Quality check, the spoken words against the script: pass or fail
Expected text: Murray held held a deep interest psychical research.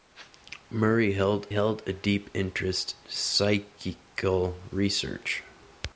pass